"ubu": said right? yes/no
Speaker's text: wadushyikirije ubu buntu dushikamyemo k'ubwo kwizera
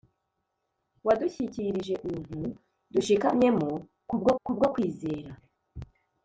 no